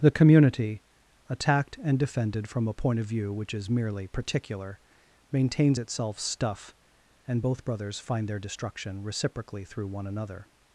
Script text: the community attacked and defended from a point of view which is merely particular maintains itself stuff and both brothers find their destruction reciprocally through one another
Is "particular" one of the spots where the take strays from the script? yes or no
no